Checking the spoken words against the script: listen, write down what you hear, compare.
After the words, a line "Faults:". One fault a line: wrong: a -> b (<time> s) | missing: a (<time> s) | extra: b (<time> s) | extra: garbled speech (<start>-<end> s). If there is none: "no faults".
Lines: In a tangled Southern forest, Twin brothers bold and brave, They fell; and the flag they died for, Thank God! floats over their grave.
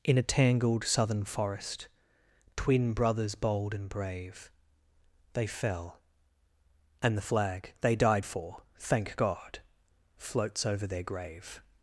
In a tangled Southern forest, Twin brothers bold and brave, They fell; and the flag they died for, Thank God! floats over their grave.
Faults:
no faults